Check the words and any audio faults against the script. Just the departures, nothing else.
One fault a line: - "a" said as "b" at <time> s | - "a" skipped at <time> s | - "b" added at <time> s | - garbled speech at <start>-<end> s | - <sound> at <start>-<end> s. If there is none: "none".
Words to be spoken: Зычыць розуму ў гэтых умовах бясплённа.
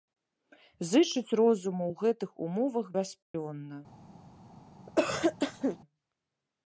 - dropout at 3.2-3.3 s
- cough at 4.9-5.8 s